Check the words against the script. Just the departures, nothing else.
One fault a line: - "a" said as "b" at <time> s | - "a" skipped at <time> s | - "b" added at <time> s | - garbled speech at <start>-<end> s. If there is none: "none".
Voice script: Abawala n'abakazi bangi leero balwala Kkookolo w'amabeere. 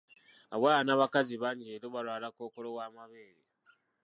none